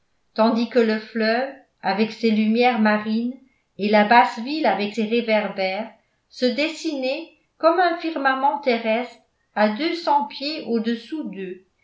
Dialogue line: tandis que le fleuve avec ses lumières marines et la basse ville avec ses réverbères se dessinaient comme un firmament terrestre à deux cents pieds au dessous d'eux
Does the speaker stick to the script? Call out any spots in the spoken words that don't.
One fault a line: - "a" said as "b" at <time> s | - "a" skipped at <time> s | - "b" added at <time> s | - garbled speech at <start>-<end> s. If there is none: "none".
none